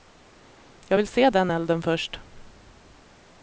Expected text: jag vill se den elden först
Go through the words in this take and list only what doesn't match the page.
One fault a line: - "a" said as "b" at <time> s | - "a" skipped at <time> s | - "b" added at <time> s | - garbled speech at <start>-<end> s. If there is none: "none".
none